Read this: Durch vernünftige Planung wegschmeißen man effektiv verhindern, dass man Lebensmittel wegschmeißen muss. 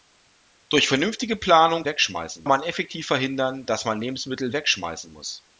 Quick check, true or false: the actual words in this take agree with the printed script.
true